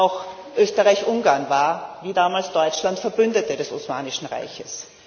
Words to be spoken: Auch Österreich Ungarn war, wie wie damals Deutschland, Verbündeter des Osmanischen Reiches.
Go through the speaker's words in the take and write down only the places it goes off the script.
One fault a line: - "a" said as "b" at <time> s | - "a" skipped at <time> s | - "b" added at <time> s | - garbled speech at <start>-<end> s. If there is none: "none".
- "wie" skipped at 2.1 s